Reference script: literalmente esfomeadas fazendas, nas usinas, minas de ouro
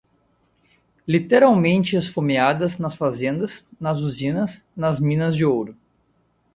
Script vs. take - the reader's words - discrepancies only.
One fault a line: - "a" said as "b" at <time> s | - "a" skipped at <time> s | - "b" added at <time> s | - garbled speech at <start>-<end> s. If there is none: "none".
- "nas" added at 2.8 s
- "nas" added at 4.8 s